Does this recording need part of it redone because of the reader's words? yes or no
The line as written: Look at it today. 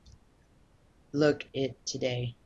yes